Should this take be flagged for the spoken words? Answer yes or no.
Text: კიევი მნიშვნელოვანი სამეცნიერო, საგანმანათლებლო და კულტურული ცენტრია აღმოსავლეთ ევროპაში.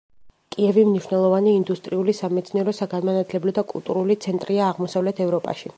yes